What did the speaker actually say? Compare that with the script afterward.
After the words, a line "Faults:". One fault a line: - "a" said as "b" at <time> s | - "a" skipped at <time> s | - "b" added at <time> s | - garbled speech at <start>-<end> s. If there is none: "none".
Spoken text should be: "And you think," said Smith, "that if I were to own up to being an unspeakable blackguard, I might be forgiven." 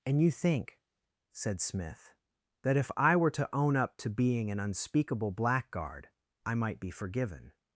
"And you think," said Smith, "that if I were to own up to being an unspeakable blackguard, I might be forgiven."
Faults:
none